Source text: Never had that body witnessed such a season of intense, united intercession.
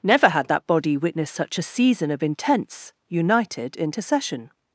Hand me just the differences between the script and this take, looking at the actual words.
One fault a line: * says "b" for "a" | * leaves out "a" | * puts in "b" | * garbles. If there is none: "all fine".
all fine